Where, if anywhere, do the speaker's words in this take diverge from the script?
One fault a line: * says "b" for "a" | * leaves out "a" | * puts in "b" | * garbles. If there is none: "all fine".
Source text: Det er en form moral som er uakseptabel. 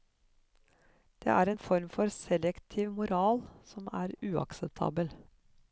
* puts in "for selektiv"